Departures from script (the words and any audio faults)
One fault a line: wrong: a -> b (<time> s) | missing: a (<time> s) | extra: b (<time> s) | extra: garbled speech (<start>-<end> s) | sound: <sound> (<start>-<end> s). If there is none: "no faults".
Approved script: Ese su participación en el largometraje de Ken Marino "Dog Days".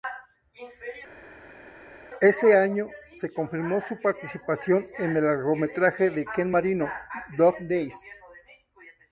extra: año se confirmó (2.6 s)